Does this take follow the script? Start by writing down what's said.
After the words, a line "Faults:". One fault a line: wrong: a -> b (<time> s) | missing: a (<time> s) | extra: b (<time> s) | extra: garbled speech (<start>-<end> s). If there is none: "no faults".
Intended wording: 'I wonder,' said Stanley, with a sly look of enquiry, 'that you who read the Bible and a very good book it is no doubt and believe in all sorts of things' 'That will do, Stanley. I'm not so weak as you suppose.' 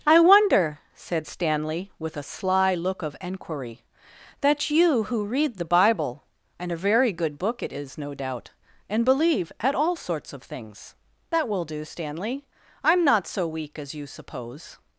'I wonder,' said Stanley, with a sly look of enquiry, 'that you who read the Bible and a very good book it is no doubt and believe at all sorts of things' 'That will do, Stanley. I'm not so weak as you suppose.'
Faults:
wrong: in -> at (9.6 s)